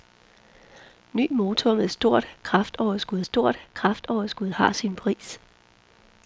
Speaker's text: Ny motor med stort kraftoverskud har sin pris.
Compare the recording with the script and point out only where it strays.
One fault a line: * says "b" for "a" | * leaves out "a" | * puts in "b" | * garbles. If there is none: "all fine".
* puts in "stort kraftoverskud"